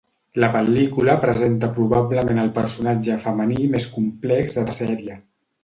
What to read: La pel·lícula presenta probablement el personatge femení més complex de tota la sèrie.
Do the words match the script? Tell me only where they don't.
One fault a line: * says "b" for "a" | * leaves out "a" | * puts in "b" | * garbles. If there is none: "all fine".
* leaves out "tota"